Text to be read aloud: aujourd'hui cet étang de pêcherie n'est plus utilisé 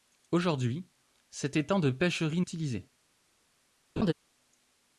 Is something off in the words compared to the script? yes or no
yes